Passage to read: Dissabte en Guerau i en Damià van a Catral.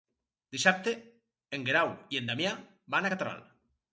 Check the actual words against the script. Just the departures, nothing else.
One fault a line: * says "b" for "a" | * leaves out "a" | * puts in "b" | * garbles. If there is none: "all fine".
all fine